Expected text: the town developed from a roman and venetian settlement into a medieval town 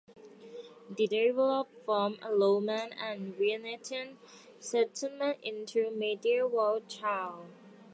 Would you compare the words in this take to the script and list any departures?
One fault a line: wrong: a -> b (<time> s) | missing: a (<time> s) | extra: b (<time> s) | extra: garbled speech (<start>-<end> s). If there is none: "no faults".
missing: town (1.1 s)